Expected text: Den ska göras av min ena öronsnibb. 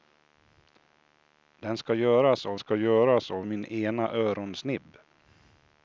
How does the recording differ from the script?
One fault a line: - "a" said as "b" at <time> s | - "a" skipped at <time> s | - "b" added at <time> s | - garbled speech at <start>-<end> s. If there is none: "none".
- "ska göras av" added at 2.6 s